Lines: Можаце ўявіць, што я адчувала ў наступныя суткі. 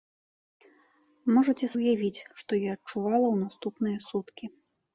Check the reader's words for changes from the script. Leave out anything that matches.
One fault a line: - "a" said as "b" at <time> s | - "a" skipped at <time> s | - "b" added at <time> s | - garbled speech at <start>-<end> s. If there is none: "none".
none